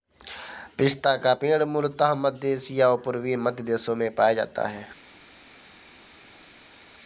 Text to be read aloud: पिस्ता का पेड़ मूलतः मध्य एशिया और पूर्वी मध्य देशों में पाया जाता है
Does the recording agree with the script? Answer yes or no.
yes